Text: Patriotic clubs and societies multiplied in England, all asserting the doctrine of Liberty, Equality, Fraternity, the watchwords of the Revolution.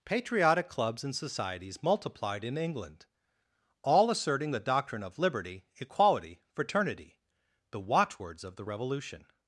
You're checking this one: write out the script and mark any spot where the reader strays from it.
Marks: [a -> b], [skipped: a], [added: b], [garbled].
Patriotic clubs and societies multiplied in England, all asserting the doctrine of Liberty, Equality, Fraternity, the watchwords of the Revolution.